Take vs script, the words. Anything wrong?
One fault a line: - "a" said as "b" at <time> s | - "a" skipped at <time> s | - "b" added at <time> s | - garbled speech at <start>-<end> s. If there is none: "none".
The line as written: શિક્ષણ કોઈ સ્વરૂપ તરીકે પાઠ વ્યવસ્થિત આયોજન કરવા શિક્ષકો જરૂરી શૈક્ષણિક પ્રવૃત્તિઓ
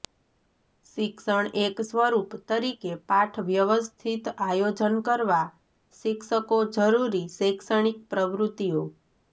- "કોઈ" said as "એક" at 1.6 s